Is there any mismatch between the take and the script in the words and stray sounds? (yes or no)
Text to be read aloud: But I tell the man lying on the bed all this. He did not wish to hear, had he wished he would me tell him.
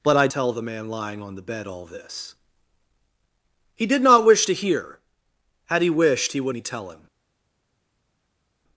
no